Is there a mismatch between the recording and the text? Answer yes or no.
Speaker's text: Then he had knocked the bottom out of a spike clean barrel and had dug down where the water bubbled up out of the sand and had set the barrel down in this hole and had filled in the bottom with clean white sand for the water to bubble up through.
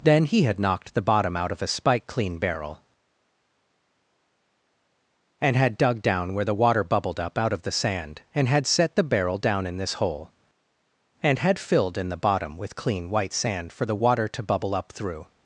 no